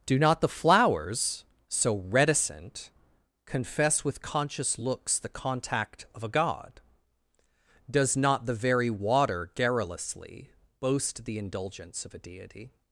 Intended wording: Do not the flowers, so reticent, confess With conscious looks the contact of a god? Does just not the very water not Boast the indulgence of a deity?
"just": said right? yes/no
no